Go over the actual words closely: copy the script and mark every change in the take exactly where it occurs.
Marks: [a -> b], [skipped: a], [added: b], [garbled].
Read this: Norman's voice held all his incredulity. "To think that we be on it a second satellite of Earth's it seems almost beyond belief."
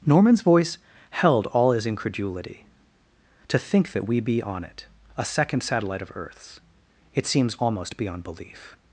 Norman's voice held all his incredulity. "To think that we be on it a second satellite of Earth's it seems almost beyond belief."